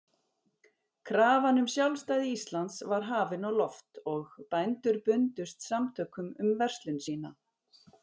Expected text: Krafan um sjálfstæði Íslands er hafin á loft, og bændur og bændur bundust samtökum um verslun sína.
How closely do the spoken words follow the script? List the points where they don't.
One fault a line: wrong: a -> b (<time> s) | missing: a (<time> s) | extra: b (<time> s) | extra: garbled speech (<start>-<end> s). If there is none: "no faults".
wrong: er -> var (2.9 s)
missing: og bændur (5.0 s)